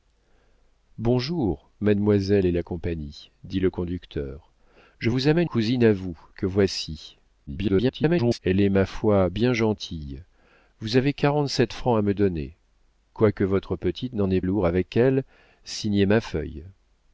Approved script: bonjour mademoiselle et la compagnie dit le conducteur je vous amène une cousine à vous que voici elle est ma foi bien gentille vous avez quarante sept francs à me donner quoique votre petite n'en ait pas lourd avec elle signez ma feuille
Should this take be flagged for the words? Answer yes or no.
yes